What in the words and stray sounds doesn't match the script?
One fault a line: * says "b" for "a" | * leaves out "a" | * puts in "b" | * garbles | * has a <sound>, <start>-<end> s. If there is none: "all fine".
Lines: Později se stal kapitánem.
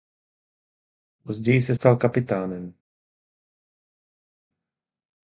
all fine